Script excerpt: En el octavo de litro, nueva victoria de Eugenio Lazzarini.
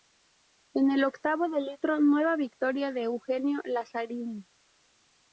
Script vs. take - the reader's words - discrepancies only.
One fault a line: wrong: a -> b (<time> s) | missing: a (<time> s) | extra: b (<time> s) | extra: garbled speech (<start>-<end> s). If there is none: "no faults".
no faults